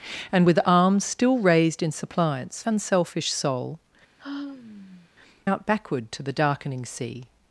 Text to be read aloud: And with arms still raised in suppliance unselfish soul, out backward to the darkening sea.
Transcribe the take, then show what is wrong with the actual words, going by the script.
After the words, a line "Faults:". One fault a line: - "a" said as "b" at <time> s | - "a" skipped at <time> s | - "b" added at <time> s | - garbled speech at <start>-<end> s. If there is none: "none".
And with arms still raised in suppliance unselfish soul, out backward to the darkening sea.
Faults:
none